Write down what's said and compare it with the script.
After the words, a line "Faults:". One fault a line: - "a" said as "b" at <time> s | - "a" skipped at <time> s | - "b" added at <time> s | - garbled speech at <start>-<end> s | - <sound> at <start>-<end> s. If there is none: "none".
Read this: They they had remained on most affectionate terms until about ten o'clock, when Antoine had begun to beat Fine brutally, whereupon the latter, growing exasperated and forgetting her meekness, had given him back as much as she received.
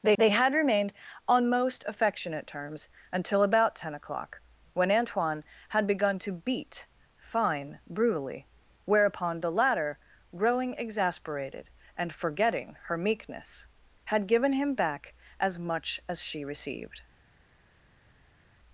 They they had remained on most affectionate terms until about ten o'clock, when Antoine had begun to beat Fine brutally, whereupon the latter, growing exasperated and forgetting her meekness, had given him back as much as she received.
Faults:
none